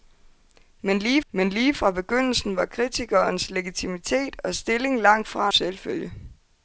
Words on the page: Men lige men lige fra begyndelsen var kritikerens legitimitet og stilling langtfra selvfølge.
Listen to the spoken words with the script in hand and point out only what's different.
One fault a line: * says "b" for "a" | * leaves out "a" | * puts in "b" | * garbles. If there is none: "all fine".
all fine